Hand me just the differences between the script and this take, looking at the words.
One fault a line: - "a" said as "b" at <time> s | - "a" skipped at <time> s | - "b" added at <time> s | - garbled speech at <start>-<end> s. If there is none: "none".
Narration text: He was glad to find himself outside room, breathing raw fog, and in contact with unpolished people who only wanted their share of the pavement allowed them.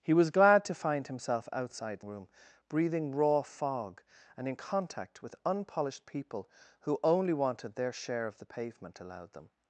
none